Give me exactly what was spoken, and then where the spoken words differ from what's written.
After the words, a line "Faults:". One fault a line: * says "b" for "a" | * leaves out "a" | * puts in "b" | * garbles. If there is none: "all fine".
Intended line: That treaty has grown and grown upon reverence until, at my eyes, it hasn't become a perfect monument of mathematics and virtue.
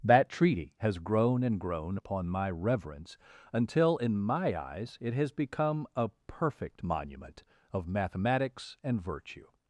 That treaty has grown and grown upon my reverence until, in my eyes, it has become a perfect monument of mathematics and virtue.
Faults:
* puts in "my"
* says "in" for "at"
* says "has" for "hasn't"